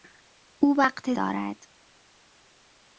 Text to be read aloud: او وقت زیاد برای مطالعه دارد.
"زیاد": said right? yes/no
no